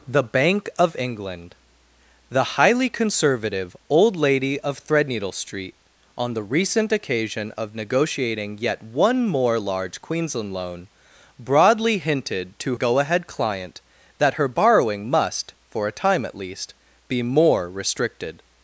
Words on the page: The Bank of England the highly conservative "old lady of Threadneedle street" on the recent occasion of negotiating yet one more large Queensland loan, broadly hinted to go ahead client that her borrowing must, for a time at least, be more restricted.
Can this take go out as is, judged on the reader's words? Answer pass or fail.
pass